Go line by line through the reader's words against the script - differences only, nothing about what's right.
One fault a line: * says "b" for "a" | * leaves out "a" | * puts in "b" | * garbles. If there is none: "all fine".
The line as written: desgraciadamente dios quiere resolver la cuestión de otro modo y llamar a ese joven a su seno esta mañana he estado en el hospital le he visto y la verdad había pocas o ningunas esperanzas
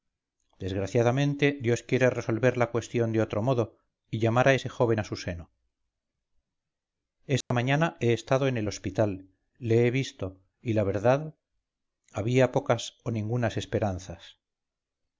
all fine